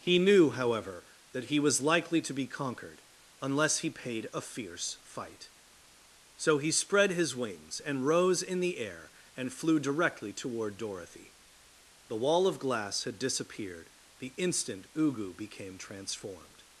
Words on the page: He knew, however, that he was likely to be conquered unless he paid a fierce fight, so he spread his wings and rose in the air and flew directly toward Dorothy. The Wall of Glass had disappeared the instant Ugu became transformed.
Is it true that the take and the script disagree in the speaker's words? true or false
false